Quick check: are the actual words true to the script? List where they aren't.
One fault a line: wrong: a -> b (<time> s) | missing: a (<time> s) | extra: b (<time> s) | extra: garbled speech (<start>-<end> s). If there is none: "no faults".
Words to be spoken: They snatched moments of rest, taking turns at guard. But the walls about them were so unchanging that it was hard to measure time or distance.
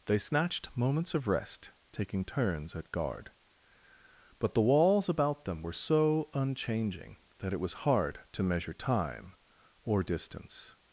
no faults